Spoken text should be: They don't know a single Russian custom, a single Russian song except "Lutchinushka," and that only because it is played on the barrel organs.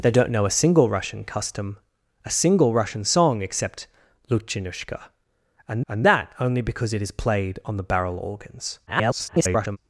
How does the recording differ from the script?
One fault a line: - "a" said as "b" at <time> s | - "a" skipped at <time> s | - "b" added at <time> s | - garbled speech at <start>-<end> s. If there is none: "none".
- "and" added at 5.9 s
- garbled speech at 8.9-9.8 s